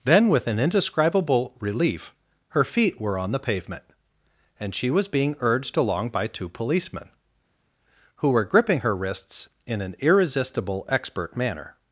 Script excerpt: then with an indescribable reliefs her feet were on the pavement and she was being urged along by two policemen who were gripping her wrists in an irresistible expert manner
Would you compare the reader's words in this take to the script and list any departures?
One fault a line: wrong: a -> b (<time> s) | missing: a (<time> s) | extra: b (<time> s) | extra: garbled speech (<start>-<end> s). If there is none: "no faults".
wrong: reliefs -> relief (1.6 s)